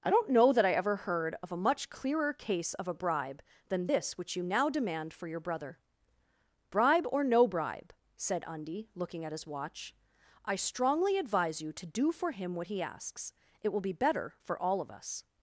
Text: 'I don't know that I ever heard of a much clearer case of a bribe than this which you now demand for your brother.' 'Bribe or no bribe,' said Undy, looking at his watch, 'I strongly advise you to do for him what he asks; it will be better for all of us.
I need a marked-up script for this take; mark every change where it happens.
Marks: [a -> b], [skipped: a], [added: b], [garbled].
'I don't know that I ever heard of a much clearer case of a bribe than this which you now demand for your brother.' 'Bribe or no bribe,' said Undy, looking at his watch, 'I strongly advise you to do for him what he asks; it will be better for all of us.